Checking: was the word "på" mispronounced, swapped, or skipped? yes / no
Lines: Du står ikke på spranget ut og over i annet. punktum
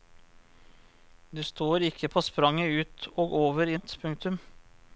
no